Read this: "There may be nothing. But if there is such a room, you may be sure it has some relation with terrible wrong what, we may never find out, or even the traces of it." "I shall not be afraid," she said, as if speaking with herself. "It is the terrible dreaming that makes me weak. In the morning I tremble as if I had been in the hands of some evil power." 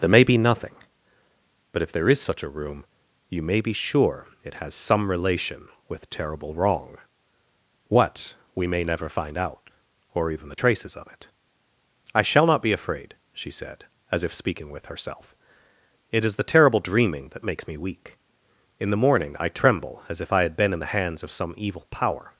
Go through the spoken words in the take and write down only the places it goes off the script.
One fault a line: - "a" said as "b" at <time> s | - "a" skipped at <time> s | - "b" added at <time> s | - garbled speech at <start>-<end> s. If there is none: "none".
none